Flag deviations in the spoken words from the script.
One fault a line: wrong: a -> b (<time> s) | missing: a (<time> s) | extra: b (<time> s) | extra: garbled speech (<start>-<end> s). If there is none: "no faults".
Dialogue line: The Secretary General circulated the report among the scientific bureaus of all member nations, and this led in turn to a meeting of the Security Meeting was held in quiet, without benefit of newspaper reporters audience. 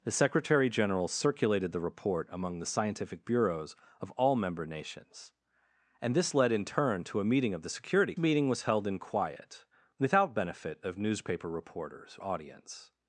no faults